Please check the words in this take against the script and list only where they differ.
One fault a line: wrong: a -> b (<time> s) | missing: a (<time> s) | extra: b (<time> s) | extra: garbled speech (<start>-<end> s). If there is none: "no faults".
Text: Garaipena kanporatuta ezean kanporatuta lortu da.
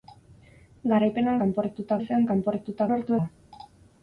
no faults